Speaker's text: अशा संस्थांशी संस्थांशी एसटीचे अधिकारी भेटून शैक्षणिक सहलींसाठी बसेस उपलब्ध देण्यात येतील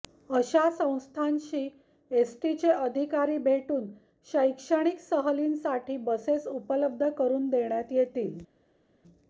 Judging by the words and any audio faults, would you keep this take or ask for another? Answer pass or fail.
fail